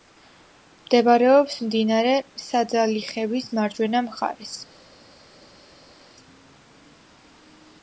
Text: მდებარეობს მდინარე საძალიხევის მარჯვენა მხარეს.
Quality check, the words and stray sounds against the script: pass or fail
pass